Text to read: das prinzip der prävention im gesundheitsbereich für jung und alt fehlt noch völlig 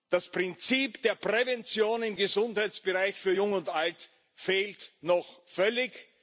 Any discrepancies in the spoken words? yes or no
no